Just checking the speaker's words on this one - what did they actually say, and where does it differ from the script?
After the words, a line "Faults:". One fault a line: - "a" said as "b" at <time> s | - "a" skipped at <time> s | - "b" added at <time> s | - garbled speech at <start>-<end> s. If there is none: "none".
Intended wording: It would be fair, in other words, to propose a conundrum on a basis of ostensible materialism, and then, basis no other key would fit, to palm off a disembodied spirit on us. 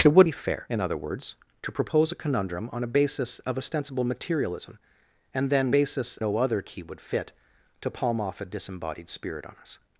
It would be fair, in other words, to propose a conundrum on a basis of ostensible materialism, and then, basis no other key would fit, to palm off a disembodied spirit on us.
Faults:
none